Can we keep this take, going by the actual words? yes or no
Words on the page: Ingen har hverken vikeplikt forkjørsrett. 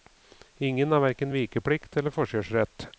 no